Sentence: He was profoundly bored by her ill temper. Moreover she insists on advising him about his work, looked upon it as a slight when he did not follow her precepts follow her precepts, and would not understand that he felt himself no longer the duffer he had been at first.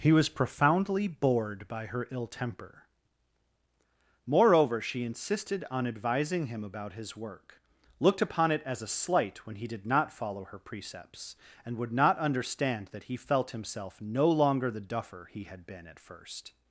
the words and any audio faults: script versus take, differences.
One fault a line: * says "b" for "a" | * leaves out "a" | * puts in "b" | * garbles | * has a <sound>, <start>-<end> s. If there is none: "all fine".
* says "insisted" for "insists"
* leaves out "follow her precepts"